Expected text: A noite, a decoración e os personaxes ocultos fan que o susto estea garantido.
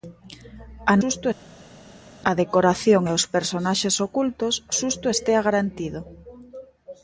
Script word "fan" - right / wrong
wrong